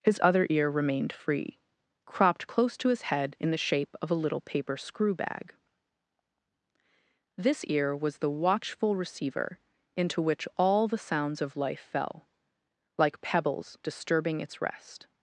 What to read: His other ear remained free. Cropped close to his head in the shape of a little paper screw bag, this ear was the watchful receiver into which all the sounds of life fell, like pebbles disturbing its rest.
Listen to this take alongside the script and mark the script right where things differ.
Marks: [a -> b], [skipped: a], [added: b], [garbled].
His other ear remained free. Cropped close to his head in the shape of a little paper screw bag, this ear was the watchful receiver into which all the sounds of life fell, like pebbles disturbing its rest.